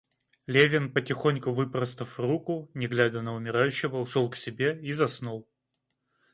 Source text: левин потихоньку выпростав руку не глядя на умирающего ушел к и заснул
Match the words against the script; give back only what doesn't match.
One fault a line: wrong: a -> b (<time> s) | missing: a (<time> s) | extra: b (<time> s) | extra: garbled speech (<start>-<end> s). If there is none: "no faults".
extra: себе (4.4 s)